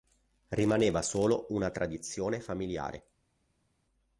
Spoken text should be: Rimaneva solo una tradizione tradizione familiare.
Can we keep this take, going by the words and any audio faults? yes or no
no